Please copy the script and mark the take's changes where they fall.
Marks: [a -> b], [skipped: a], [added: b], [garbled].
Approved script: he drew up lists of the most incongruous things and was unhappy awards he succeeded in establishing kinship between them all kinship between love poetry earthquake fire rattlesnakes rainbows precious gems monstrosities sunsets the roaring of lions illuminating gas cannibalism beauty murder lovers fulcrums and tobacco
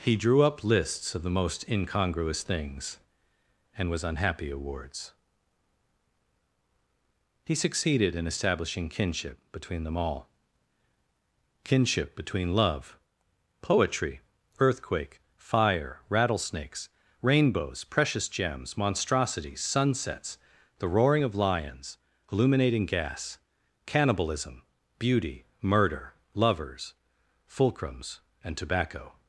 he drew up lists of the most incongruous things and was unhappy awards he succeeded in establishing kinship between them all kinship between love poetry earthquake fire rattlesnakes rainbows precious gems monstrosities sunsets the roaring of lions illuminating gas cannibalism beauty murder lovers fulcrums and tobacco